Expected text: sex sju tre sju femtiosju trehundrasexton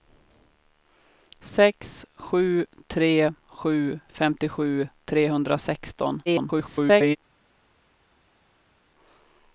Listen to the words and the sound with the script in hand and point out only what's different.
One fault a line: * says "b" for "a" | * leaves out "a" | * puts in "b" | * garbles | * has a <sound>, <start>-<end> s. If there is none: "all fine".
* garbles